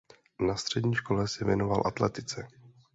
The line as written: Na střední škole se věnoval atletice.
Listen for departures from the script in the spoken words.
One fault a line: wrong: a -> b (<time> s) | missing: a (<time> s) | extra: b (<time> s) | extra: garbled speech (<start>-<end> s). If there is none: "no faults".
no faults